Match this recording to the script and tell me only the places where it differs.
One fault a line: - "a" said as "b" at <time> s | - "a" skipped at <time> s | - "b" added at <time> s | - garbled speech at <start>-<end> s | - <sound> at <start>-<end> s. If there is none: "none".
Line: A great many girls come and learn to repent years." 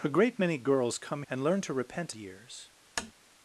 - tap at 3.0-3.1 s